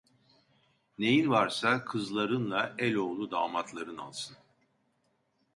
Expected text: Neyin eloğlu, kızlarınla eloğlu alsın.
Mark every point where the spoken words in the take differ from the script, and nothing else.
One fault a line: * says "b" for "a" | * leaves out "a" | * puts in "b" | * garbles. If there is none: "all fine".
* says "varsa" for "eloğlu"
* puts in "damatların"